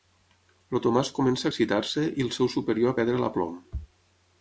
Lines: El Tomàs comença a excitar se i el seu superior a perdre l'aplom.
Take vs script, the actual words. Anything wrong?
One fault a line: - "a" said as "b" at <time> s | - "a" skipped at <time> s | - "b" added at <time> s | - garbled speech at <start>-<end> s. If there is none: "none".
none